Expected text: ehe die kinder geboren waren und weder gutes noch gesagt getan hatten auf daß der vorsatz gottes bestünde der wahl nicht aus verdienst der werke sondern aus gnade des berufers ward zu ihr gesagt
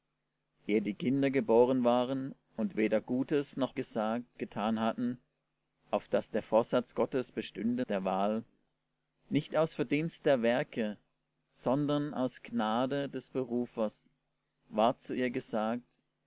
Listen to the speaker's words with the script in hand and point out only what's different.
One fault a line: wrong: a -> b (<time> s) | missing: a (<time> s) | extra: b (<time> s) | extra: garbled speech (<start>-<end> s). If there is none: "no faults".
no faults